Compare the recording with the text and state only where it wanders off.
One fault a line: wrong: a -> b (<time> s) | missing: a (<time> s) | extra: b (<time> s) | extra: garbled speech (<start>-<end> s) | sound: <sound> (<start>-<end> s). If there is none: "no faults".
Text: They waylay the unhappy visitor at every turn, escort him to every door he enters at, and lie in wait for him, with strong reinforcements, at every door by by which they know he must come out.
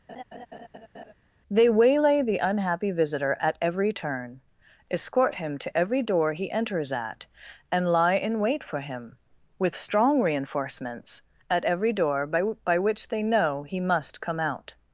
sound: laugh (0.1-1.1 s)